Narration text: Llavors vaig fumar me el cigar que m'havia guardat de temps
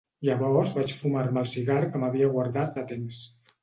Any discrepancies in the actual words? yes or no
no